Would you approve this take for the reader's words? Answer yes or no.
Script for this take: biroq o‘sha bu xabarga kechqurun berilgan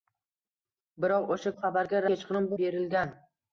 yes